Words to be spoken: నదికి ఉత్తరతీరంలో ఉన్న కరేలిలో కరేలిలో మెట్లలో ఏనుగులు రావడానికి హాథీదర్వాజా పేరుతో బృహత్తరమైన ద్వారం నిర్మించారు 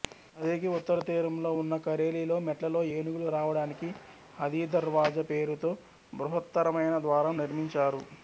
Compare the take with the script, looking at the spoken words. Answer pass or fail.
fail